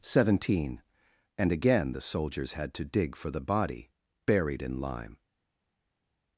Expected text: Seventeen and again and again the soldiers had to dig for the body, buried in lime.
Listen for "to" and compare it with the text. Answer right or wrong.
right